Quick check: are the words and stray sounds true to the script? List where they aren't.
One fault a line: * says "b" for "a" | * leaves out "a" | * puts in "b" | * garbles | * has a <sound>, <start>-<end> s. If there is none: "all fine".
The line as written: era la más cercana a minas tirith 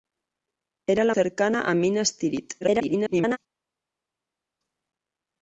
* leaves out "más"
* garbles